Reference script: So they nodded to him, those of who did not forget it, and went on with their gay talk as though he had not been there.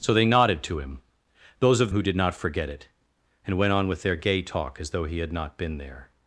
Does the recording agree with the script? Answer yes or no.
yes